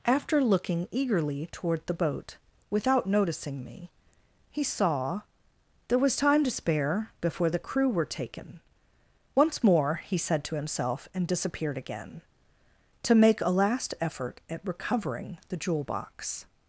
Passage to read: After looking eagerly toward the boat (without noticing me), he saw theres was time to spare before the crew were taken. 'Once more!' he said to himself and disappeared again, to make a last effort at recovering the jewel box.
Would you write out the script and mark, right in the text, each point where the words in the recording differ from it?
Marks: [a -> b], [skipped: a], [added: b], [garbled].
After looking eagerly toward the boat (without noticing me), he saw [theres -> there] was time to spare before the crew were taken. 'Once more!' he said to himself and disappeared again, to make a last effort at recovering the jewel box.